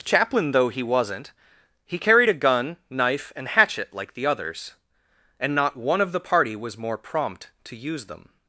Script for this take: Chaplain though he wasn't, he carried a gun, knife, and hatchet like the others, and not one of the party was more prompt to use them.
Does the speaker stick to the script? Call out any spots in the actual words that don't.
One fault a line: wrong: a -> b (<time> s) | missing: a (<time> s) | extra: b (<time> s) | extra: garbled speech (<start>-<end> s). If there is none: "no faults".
no faults